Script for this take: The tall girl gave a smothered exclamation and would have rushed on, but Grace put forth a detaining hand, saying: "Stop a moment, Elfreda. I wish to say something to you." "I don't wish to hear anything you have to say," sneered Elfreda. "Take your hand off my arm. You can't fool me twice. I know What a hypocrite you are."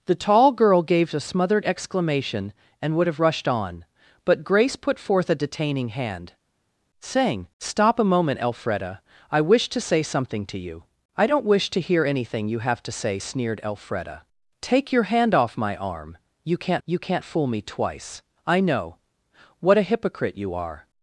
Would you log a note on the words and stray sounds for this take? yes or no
yes